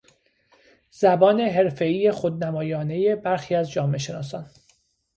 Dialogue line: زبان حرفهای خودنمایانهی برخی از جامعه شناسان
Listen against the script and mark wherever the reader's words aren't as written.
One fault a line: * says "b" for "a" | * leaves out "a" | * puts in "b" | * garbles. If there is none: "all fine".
all fine